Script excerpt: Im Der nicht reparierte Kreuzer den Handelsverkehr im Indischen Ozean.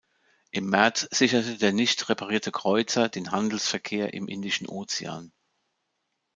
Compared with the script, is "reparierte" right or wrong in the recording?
right